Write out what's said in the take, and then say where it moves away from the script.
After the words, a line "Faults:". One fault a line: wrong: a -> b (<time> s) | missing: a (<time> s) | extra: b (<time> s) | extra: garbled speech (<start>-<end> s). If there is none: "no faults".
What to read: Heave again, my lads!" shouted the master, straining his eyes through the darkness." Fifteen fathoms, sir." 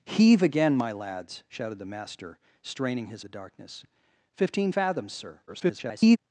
Heave again, my lads!" shouted the master, straining his the darkness." Fifteen fathoms, sir." [garbled]
Faults:
missing: eyes through (3.2 s)
extra: garbled speech (5.5-6.2 s)